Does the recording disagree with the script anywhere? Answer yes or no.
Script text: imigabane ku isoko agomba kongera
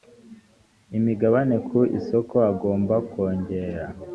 no